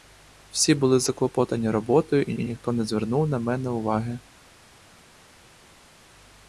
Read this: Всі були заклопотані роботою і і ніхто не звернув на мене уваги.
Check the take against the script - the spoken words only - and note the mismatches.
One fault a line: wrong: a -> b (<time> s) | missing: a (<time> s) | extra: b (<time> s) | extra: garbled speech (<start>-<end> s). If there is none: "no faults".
no faults